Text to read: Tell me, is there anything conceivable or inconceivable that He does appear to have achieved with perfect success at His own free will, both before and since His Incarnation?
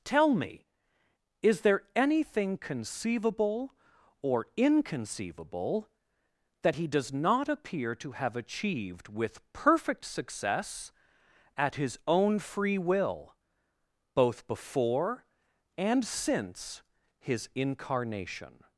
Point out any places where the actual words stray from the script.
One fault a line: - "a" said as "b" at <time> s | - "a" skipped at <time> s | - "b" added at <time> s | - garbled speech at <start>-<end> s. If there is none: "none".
- "not" added at 7.1 s